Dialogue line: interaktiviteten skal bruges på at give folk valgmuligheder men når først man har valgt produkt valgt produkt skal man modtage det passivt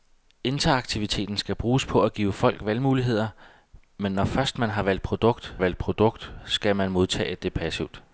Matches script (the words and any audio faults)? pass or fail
pass